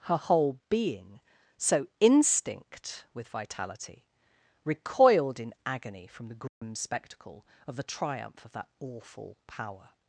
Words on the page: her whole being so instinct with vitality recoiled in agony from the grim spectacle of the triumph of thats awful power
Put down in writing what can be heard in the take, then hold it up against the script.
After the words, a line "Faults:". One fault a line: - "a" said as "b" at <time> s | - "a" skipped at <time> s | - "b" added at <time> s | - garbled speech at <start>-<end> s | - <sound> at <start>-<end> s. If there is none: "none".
her whole being so instinct with vitality recoiled in agony from the grim spectacle of the triumph of that awful power
Faults:
- dropout at 6.5-6.6 s
- "thats" said as "that" at 8.5 s